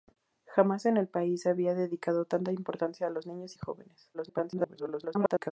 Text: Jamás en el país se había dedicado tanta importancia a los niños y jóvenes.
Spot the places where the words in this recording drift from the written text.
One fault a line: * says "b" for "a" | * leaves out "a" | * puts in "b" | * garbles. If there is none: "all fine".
* garbles